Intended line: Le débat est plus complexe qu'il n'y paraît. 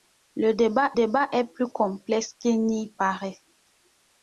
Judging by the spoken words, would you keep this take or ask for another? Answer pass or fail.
fail